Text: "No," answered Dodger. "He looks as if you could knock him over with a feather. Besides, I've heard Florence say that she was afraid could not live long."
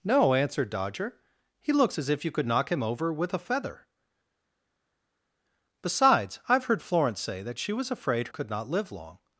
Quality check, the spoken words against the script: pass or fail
pass